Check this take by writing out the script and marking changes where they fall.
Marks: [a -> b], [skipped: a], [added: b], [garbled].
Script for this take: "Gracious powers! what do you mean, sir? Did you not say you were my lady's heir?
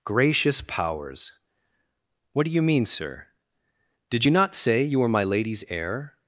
"Gracious powers! what do you mean, sir? Did you not say you were my lady's heir?